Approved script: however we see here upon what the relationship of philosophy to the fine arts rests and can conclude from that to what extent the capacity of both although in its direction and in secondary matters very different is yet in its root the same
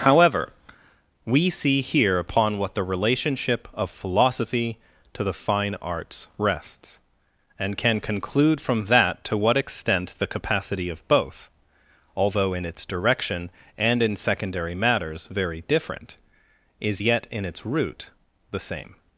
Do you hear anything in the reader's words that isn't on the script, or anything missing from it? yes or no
no